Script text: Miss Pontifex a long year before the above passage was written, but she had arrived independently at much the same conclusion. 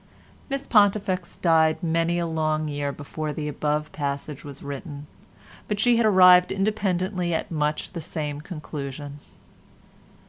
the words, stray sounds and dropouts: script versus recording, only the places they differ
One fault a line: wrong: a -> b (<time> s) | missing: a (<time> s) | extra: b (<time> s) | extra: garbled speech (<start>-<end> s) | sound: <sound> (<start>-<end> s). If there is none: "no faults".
extra: died many (1.4 s)